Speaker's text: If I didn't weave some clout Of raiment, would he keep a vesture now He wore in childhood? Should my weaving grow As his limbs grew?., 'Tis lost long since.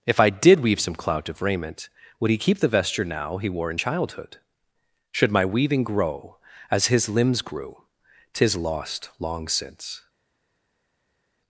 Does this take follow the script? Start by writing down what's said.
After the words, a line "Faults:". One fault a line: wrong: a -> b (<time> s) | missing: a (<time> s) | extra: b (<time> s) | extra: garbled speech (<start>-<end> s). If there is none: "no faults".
If I did weave some clout Of raiment, would he keep the vesture now He wore in childhood? Should my weaving grow As his limbs grew?., 'Tis lost long since.
Faults:
wrong: didn't -> did (0.3 s)
wrong: a -> the (2.6 s)